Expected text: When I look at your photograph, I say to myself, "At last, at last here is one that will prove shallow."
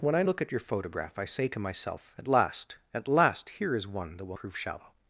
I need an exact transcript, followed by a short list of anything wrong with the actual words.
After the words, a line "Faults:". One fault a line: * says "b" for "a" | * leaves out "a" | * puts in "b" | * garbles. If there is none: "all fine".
When I look at your photograph, I say to myself, "At last, at last here is one that will prove shallow."
Faults:
all fine